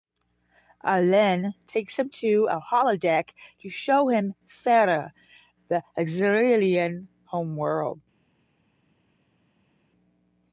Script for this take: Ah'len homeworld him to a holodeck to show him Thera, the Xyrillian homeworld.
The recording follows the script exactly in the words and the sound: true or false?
false